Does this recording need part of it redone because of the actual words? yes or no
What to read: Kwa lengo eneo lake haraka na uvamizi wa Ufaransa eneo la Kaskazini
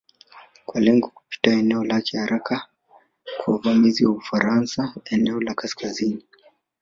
yes